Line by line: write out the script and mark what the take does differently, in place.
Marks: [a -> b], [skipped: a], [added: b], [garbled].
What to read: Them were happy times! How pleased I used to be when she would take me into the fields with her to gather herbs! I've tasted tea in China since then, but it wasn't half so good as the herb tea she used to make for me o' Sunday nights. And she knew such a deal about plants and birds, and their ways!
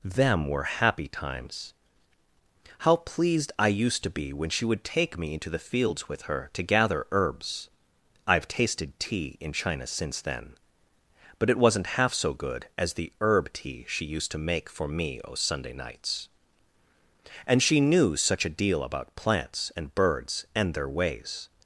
Them were happy times! How pleased I used to be when she would take me into the fields with her to gather herbs! I've tasted tea in China since then, but it wasn't half so good as the herb tea she used to make for me o' Sunday nights. And she knew such a deal about plants and birds, and their ways!